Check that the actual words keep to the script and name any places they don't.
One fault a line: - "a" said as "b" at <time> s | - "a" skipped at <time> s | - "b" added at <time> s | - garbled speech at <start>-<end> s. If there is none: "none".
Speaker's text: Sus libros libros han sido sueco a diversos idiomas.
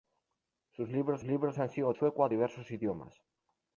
none